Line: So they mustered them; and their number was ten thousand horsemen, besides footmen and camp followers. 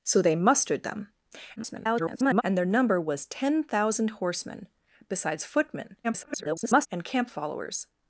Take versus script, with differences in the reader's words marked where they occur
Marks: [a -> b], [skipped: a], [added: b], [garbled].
So they mustered them; [garbled] and their number was ten thousand horsemen, besides footmen [garbled] and camp followers.